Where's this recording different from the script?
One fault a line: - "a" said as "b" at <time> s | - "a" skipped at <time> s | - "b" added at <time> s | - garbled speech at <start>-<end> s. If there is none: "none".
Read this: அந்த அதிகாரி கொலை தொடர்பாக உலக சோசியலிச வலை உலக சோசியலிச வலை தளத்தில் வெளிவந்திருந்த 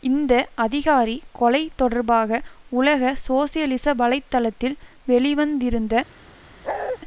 - "அந்த" said as "இந்த" at 0.0 s
- "உலக சோசியலிச வலை" skipped at 4.2 s